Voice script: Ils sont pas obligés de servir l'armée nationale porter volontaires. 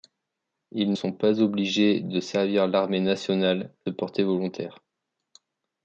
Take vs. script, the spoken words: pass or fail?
pass